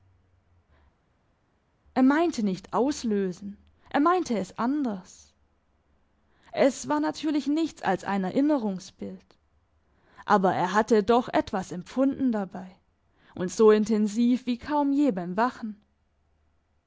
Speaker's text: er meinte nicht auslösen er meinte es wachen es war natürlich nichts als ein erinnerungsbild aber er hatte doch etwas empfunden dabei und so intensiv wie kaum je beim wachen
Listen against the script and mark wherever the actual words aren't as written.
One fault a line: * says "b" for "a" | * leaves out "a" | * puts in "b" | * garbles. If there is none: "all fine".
* says "anders" for "wachen"